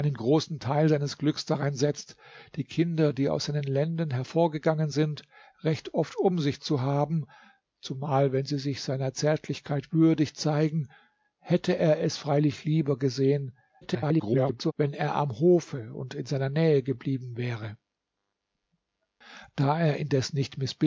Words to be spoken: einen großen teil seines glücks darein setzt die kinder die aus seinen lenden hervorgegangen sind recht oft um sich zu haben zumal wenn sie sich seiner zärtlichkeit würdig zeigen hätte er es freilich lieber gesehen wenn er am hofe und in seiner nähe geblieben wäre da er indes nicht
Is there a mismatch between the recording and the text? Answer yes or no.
yes